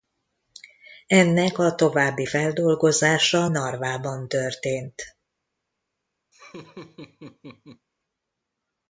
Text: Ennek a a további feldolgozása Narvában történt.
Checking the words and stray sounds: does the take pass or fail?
fail